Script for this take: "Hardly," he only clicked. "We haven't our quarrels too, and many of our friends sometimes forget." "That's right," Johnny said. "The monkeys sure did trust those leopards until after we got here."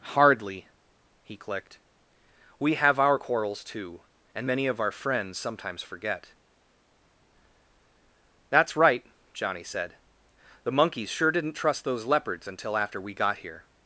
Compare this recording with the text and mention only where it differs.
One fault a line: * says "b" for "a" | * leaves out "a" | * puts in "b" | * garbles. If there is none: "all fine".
* leaves out "only"
* says "have" for "haven't"
* says "didn't" for "did"